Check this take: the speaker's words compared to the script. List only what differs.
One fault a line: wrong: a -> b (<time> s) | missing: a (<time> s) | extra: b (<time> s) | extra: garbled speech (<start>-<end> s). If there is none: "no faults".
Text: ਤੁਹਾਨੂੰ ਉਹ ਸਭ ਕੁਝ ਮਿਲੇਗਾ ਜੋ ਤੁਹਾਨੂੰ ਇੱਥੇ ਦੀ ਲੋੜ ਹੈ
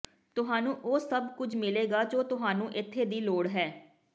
no faults